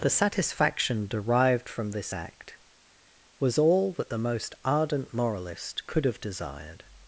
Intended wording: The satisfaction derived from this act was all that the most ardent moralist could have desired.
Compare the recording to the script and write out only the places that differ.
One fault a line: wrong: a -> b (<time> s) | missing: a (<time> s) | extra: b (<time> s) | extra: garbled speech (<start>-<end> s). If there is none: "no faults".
no faults